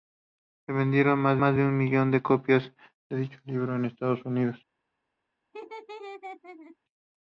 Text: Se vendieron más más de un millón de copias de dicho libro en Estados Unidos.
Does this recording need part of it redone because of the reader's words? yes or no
no